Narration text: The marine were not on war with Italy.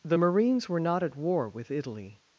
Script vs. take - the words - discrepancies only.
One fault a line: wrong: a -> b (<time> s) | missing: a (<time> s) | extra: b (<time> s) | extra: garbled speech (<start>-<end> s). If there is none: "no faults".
wrong: marine -> marines (0.2 s)
wrong: on -> at (1.0 s)